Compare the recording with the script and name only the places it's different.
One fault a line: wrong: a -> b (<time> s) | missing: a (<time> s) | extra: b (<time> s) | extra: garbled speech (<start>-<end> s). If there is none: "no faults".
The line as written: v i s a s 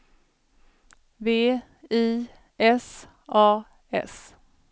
no faults